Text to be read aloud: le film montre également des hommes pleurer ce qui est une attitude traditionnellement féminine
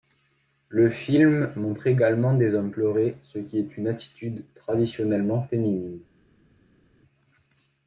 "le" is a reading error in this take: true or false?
false